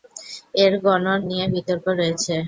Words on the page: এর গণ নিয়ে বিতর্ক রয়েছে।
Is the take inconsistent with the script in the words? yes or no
no